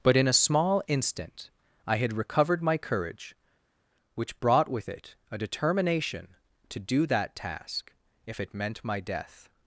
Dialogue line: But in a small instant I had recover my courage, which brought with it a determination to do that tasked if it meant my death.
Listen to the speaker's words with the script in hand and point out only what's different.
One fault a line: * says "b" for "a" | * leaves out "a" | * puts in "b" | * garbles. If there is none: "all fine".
* says "recovered" for "recover"
* says "task" for "tasked"